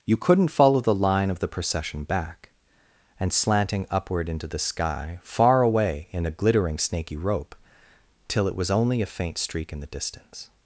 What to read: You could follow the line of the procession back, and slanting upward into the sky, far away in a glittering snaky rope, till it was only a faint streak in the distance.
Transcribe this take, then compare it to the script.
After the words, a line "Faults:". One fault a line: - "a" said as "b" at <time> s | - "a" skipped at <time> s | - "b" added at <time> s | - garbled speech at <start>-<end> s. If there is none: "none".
You couldn't follow the line of the procession back, and slanting upward into the sky, far away in a glittering snaky rope, till it was only a faint streak in the distance.
Faults:
- "could" said as "couldn't" at 0.2 s